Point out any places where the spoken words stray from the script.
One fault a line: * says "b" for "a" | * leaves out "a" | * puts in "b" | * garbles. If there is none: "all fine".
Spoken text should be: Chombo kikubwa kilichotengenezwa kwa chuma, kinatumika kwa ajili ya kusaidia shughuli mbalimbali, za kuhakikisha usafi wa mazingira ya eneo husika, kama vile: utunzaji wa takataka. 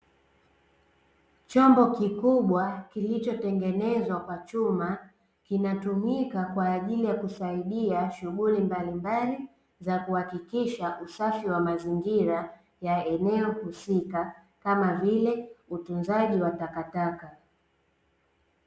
all fine